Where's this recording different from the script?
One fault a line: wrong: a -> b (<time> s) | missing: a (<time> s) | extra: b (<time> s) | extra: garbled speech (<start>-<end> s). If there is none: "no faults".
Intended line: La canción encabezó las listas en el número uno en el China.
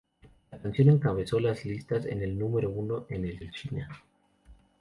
extra: el (3.4 s)